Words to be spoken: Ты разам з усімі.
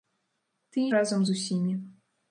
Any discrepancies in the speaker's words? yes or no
no